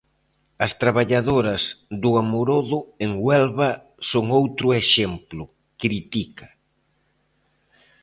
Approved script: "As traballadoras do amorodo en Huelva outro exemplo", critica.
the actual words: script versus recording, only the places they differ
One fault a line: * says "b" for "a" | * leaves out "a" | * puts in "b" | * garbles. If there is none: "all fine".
* puts in "son"